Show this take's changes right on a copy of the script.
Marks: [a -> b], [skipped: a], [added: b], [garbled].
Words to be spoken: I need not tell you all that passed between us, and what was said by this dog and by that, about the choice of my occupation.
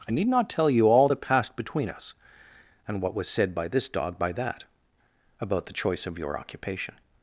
I need not tell you all that passed between us, and what was said by this dog [skipped: and] by that, about the choice of [my -> your] occupation.